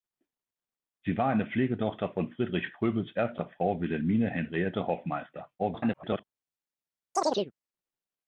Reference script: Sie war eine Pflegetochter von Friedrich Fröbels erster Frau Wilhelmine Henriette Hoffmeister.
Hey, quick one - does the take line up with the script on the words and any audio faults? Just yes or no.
no